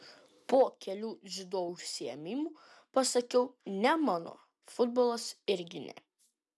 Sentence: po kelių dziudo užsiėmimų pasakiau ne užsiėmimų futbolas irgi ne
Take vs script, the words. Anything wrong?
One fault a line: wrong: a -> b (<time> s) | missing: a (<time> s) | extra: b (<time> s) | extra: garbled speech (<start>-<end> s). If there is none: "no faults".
wrong: užsiėmimų -> mano (4.1 s)